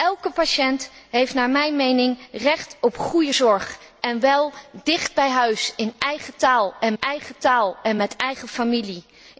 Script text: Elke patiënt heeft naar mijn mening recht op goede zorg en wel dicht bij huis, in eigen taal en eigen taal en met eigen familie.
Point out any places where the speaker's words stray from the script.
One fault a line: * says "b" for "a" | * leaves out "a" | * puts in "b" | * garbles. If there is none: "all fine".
all fine